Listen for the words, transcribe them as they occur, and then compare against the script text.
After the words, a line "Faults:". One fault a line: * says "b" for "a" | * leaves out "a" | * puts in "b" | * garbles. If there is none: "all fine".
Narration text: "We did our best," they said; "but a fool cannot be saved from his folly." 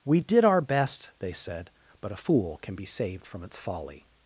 "We did our best," they said; "but a fool can be saved from its folly."
Faults:
* says "can" for "cannot"
* says "its" for "his"